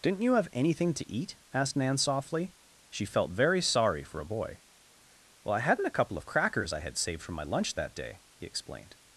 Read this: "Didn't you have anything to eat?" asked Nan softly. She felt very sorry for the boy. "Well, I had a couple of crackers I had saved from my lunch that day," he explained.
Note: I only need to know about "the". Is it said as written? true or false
false